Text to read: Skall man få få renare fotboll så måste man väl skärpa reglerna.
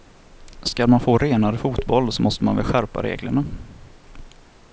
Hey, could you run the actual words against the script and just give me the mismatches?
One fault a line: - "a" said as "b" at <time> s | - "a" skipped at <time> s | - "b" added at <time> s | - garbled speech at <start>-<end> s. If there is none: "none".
- "få" skipped at 1.2 s